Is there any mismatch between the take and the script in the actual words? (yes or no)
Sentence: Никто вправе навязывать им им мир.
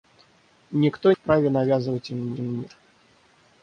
no